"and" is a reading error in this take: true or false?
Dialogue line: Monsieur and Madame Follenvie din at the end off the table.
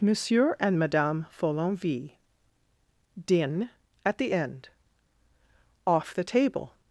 false